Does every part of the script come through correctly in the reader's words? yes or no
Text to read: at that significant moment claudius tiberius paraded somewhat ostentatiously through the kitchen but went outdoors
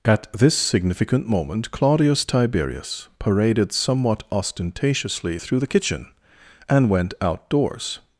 no